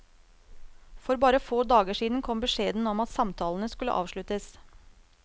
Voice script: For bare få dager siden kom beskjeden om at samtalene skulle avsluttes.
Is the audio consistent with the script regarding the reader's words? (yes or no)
yes